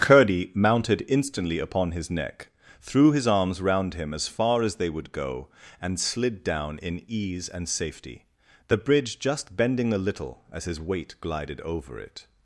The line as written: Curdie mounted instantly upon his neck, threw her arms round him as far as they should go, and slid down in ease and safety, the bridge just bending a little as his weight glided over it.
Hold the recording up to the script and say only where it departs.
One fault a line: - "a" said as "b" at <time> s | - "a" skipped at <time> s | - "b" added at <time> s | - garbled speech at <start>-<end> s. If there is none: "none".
- "her" said as "his" at 3.1 s
- "should" said as "would" at 4.9 s